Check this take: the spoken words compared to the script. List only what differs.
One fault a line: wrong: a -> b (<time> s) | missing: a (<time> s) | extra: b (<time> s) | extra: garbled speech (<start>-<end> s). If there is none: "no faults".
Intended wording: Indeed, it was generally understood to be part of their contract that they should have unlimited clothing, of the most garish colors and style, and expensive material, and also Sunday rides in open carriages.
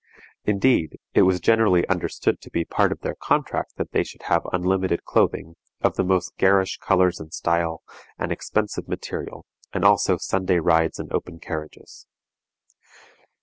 no faults